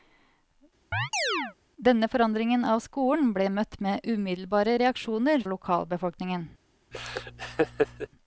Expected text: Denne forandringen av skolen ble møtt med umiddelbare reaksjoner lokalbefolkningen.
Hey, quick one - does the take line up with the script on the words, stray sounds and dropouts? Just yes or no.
no